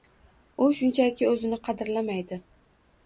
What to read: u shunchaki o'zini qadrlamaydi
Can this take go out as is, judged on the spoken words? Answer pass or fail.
pass